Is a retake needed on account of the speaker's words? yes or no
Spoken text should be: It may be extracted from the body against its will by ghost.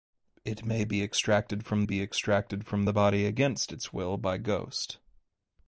yes